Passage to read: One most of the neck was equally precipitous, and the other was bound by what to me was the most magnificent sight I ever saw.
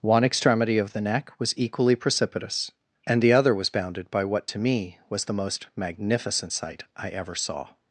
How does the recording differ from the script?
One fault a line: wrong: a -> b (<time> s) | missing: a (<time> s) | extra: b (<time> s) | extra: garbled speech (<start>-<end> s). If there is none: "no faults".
wrong: most -> extremity (0.2 s)
wrong: bound -> bounded (3.7 s)